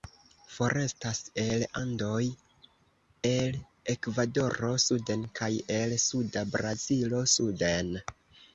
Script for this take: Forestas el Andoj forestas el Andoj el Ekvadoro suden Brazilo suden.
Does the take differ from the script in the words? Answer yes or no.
yes